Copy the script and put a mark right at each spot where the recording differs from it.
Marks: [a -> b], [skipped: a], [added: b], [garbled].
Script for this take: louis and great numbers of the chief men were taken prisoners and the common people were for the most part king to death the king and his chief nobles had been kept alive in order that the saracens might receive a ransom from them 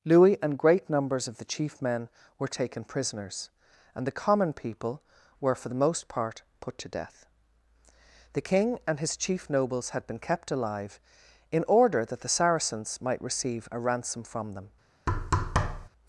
louis and great numbers of the chief men were taken prisoners and the common people were for the most part [king -> put] to death the king and his chief nobles had been kept alive in order that the saracens might receive a ransom from them